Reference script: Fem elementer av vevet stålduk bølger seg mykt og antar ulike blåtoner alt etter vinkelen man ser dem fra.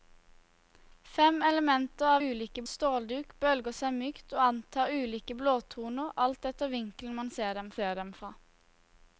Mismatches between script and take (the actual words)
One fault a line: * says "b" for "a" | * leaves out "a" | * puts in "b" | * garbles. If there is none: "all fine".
* says "ulike" for "vevet"
* puts in "ser dem"